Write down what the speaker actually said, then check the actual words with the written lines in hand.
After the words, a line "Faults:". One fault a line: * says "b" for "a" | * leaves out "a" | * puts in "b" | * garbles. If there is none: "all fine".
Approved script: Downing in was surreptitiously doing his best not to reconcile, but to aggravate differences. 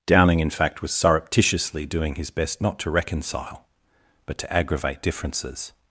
Downing in fact was surreptitiously doing his best not to reconcile, but to aggravate differences.
Faults:
* puts in "fact"